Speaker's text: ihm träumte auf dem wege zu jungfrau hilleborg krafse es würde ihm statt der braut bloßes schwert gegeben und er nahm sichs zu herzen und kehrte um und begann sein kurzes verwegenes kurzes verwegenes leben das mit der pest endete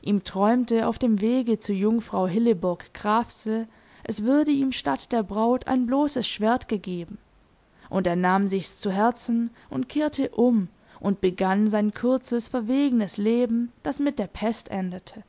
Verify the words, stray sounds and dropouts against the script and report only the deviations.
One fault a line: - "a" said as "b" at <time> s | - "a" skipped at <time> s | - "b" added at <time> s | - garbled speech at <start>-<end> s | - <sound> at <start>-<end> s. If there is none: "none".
- "ein" added at 5.7 s
- "kurzes verwegenes" skipped at 13.2 s